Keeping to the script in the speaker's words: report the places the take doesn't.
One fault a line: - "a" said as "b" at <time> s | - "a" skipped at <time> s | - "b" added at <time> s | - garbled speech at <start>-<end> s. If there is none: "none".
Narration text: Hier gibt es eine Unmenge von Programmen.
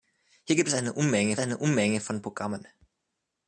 - "eine Unmenge" added at 1.4 s